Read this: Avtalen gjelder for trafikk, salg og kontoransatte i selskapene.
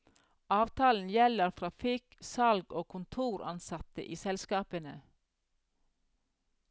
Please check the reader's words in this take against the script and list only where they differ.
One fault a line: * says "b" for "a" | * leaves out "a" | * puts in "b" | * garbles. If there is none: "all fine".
* leaves out "for"